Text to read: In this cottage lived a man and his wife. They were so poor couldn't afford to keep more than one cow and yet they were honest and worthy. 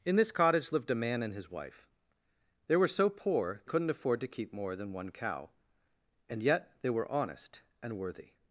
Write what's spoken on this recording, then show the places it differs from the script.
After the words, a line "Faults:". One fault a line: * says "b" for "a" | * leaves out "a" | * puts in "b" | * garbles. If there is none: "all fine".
In this cottage lived a man and his wife. They were so poor couldn't afford to keep more than one cow and yet they were honest and worthy.
Faults:
all fine